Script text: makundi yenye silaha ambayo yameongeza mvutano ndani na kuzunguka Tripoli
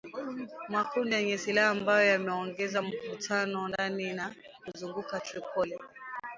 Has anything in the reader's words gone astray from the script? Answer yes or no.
no